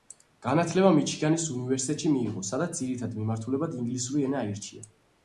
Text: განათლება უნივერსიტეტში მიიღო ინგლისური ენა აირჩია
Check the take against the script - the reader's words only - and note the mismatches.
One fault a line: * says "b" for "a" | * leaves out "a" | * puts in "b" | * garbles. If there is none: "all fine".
* puts in "მიჩიგანის"
* puts in "სადაც ძირითად მიმართულებად"